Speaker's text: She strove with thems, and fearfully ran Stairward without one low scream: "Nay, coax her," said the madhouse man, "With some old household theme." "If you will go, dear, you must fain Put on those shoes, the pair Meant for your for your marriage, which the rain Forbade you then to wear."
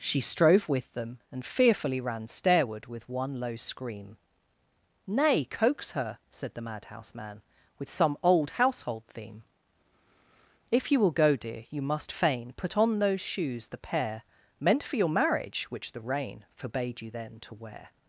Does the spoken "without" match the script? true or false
false